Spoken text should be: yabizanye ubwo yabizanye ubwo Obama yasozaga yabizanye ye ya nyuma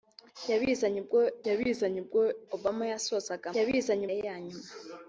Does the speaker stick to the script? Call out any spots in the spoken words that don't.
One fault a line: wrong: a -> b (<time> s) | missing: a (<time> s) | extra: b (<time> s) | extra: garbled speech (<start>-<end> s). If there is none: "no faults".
no faults